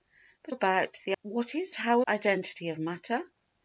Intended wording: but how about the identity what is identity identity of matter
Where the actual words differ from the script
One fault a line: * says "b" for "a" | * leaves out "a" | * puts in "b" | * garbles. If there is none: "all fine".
* leaves out "how"
* leaves out "identity"
* says "how" for "identity"